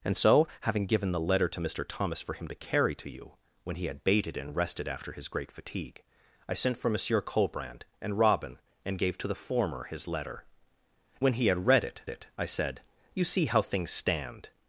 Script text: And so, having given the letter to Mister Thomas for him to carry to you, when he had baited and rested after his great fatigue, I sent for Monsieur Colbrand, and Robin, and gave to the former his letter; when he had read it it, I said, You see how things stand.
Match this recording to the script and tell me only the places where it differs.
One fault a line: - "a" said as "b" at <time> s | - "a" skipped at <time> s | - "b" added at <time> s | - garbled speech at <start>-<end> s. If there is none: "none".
none